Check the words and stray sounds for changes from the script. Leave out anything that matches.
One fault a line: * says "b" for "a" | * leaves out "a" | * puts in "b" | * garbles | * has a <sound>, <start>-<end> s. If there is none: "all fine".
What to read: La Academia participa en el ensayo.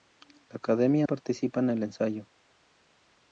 all fine